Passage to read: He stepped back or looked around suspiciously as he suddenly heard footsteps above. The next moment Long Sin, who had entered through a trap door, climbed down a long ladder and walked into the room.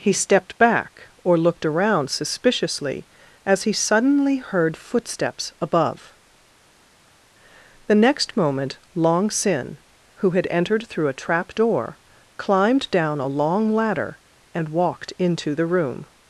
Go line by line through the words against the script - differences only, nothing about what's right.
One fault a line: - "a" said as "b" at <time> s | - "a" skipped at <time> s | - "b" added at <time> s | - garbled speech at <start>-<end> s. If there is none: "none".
none